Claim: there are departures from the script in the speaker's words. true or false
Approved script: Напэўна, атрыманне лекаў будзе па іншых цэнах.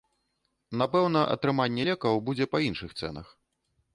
false